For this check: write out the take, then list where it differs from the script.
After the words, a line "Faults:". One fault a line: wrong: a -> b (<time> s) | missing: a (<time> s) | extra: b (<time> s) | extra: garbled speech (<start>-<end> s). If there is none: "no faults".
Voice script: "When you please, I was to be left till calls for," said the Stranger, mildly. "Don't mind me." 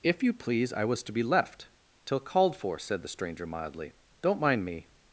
"If you please, I was to be left till called for," said the Stranger, mildly. "Don't mind me."
Faults:
wrong: When -> If (0.0 s)
wrong: calls -> called (2.2 s)